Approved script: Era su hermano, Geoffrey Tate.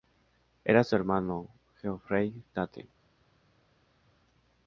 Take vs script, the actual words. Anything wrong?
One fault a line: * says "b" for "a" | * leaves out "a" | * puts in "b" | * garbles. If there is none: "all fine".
all fine